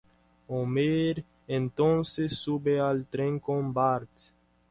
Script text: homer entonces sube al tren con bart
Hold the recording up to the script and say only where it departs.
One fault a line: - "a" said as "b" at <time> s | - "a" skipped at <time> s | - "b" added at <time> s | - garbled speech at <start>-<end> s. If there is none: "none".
none